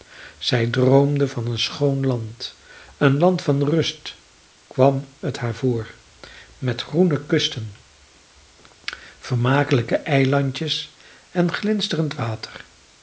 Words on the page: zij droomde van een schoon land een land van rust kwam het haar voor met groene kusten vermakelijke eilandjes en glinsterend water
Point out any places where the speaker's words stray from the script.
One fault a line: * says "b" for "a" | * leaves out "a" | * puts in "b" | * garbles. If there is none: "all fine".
all fine